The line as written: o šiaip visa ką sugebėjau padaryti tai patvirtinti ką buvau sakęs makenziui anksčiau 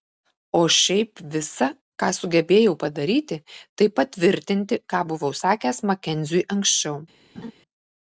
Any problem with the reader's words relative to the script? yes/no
no